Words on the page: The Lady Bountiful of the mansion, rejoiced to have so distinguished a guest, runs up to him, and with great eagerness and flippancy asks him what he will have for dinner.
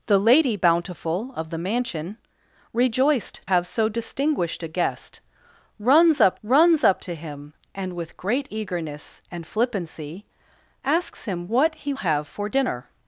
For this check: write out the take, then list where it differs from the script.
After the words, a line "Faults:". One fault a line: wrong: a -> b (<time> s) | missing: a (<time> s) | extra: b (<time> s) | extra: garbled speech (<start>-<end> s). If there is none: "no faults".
The Lady Bountiful of the mansion, rejoiced have so distinguished a guest, runs up runs up to him, and with great eagerness and flippancy asks him what he have for dinner.
Faults:
missing: to (3.4 s)
extra: runs up (6.4 s)
missing: will (11.9 s)